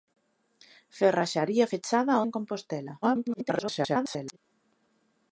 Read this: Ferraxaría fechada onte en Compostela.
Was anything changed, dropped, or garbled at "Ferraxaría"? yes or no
no